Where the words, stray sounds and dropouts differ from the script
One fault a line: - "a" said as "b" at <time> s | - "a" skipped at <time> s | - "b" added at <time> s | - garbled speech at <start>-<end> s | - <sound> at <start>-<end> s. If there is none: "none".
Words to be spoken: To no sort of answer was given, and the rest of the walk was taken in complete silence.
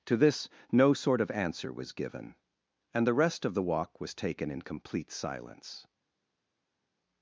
- "this" added at 0.2 s